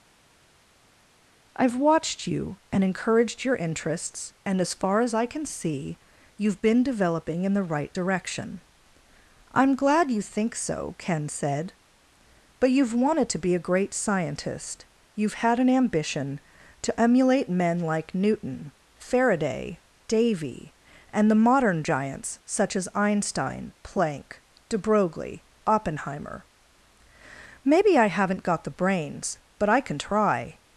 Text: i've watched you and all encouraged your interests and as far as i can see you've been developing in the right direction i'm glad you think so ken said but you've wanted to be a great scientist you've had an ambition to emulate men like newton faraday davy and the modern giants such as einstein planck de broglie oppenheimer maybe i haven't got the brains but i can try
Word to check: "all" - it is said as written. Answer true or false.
false